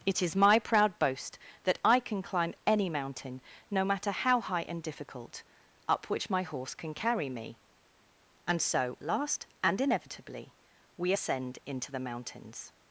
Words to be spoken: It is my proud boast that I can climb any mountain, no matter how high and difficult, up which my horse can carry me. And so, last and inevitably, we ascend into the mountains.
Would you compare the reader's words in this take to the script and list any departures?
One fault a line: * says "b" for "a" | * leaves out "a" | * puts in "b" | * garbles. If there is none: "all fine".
all fine